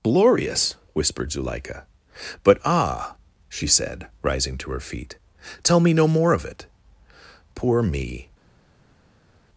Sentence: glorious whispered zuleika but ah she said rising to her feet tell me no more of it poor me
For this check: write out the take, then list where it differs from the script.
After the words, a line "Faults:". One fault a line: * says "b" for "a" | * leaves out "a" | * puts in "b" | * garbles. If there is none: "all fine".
glorious whispered zuleika but ah she said rising to her feet tell me no more of it poor me
Faults:
all fine